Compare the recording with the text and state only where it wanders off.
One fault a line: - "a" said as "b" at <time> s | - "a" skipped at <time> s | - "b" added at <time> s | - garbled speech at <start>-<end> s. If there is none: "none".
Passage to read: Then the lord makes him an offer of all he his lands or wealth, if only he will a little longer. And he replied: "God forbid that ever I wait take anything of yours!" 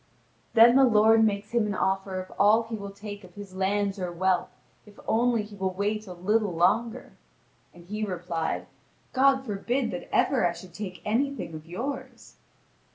- "will take of" added at 2.8 s
- "wait" added at 5.8 s
- "wait" said as "should" at 10.5 s